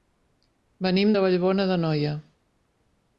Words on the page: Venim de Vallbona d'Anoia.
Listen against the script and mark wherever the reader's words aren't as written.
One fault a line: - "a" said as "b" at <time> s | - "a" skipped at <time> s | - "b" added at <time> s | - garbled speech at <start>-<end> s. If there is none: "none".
none